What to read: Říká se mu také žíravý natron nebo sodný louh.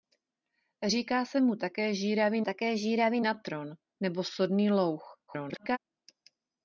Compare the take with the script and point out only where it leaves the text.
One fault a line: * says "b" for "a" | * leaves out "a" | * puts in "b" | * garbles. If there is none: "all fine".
* puts in "také žíravý"
* garbles